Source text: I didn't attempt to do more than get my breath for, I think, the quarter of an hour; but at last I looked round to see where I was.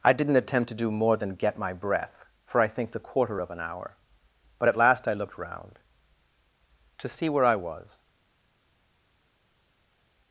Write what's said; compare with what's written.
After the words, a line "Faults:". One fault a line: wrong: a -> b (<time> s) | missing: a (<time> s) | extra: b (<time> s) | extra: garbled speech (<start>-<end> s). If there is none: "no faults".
I didn't attempt to do more than get my breath for, I think, the quarter of an hour; but at last I looked round to see where I was.
Faults:
no faults